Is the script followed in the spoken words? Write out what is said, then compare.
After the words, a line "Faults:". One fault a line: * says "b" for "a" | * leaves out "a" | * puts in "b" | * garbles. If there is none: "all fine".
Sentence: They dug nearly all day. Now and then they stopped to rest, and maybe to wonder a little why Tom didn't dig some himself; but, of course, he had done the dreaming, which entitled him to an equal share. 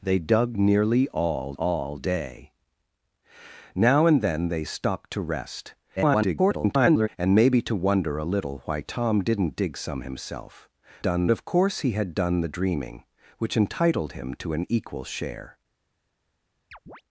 They dug nearly all all day. Now and then they stopped to rest, [garbled] and maybe to wonder a little why Tom didn't dig some himself; done, of course, he had done the dreaming, which entitled him to an equal share.
Faults:
* puts in "all"
* garbles
* says "done" for "but"